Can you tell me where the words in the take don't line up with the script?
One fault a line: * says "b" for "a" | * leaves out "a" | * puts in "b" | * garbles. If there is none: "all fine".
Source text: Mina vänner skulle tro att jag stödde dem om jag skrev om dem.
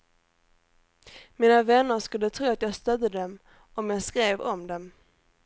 all fine